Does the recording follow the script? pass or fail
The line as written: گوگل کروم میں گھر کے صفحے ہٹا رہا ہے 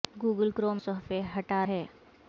fail